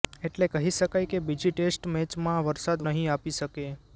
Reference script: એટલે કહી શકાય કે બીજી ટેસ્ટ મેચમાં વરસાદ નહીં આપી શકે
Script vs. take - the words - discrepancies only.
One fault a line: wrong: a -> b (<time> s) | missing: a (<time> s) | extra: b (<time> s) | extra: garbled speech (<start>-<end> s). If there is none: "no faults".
no faults